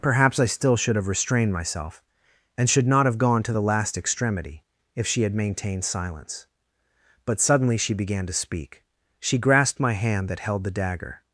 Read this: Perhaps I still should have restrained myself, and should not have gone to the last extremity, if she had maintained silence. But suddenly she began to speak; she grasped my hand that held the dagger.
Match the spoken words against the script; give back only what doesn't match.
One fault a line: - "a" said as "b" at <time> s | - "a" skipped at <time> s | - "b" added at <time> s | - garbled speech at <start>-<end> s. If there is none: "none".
none